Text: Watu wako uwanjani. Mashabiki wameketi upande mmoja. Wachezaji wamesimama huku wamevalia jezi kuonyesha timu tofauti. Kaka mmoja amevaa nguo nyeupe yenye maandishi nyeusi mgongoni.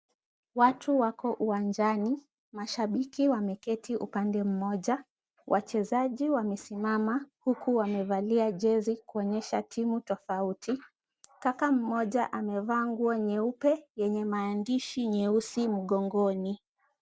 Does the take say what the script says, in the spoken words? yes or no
yes